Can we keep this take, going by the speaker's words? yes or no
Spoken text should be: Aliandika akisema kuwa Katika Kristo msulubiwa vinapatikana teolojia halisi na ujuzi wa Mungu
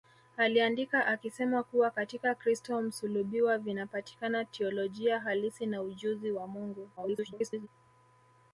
no